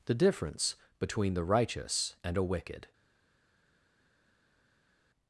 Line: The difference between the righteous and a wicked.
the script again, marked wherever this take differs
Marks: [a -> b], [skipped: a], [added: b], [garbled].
The difference between the righteous and a wicked.